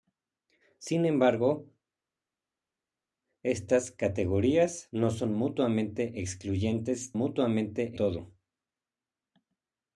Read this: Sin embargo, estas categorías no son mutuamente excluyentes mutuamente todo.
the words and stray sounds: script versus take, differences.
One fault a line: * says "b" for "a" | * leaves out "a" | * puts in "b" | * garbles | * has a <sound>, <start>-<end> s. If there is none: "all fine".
all fine